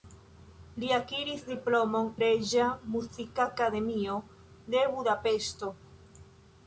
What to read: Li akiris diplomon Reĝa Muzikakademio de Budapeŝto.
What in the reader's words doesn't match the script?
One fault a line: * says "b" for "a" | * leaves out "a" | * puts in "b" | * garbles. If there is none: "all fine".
all fine